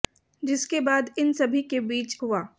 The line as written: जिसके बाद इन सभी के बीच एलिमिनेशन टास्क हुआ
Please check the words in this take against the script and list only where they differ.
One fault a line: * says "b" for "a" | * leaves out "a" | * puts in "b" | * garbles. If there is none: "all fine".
* leaves out "एलिमिनेशन टास्क"